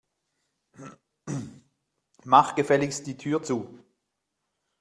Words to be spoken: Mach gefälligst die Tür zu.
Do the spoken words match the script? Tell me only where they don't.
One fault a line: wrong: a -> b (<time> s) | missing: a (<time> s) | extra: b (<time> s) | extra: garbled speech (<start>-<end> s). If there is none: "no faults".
no faults